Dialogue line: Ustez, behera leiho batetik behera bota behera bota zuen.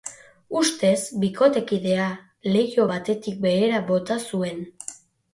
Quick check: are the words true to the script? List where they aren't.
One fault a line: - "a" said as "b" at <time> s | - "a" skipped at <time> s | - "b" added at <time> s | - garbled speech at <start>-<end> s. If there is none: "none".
- "behera" said as "bikotekidea" at 1.2 s
- "behera bota" skipped at 4.2 s